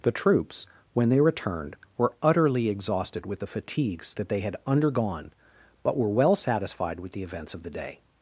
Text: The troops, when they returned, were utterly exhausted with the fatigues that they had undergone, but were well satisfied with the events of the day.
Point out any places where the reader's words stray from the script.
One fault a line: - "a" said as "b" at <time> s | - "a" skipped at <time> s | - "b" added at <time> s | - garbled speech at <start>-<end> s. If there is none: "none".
none